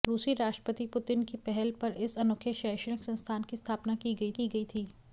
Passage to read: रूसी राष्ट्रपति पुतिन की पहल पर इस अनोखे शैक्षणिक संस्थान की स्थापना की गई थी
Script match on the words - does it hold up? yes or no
no